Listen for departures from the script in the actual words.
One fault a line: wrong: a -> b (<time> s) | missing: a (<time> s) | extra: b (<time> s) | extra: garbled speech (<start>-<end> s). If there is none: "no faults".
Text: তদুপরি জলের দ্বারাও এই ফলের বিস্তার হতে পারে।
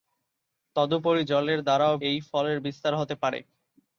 no faults